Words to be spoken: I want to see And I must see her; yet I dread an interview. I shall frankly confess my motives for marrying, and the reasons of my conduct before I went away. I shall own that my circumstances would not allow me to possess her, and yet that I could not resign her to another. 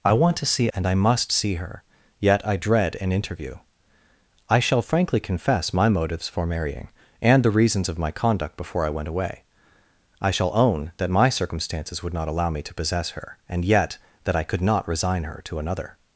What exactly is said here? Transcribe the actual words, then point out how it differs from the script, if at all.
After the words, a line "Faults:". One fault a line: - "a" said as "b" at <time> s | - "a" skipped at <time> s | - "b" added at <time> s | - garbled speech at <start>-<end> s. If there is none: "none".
I want to see And I must see her; yet I dread an interview. I shall frankly confess my motives for marrying, and the reasons of my conduct before I went away. I shall own that my circumstances would not allow me to possess her, and yet that I could not resign her to another.
Faults:
none